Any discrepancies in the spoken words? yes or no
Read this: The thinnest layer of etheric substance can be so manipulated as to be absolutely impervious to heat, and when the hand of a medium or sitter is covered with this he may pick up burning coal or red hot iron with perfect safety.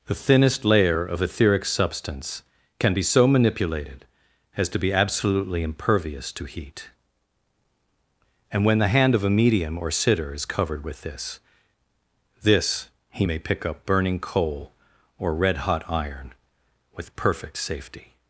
yes